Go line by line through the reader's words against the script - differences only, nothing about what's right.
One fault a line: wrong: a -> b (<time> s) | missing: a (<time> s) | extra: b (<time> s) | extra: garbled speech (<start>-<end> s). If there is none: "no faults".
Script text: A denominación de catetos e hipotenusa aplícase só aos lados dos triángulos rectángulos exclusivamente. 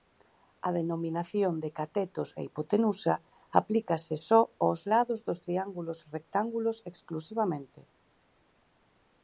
no faults